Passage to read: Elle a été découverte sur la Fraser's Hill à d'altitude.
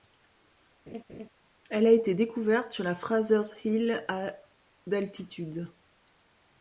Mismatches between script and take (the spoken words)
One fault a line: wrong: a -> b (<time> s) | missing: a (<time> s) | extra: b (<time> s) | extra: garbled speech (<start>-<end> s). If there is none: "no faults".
no faults